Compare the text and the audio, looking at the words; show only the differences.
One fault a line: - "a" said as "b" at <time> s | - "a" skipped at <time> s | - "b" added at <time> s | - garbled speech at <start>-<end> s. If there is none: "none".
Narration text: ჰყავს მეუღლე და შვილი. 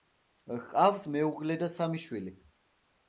- "სამი" added at 1.8 s